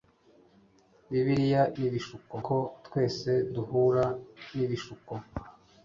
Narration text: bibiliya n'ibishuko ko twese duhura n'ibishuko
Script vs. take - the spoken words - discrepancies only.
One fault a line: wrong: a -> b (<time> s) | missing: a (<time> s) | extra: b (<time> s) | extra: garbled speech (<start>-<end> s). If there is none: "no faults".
no faults